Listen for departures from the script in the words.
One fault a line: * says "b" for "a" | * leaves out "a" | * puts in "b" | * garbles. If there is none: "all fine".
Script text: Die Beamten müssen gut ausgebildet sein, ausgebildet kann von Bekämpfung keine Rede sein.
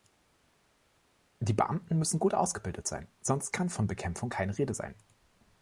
* says "sonst" for "ausgebildet"